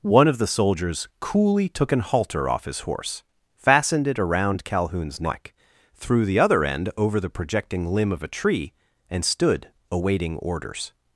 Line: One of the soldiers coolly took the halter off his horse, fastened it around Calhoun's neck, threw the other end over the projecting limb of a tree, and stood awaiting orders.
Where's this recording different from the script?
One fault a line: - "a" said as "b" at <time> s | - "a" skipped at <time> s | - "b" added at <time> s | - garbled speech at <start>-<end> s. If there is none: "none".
- "the" said as "an" at 1.9 s